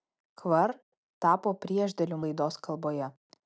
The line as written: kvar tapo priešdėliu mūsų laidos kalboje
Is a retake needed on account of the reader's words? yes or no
yes